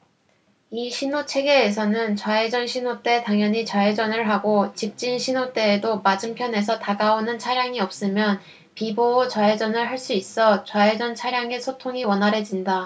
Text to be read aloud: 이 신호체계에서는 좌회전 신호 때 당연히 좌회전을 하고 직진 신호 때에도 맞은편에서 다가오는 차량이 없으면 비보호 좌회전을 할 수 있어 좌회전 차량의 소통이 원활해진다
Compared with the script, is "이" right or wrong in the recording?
right